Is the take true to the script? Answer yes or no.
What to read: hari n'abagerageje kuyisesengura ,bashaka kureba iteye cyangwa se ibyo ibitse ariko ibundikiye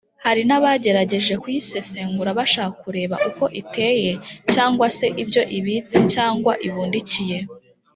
no